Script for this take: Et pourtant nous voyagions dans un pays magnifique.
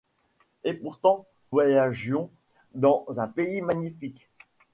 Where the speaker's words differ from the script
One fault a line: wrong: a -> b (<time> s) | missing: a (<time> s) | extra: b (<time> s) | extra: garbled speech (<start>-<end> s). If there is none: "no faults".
missing: nous (1.3 s)